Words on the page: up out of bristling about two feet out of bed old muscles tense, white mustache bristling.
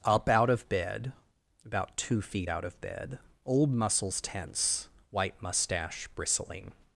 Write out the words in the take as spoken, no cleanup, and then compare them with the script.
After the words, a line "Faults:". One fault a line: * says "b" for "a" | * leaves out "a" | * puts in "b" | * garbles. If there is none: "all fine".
up out of bed about two feet out of bed old muscles tense, white mustache bristling.
Faults:
* says "bed" for "bristling"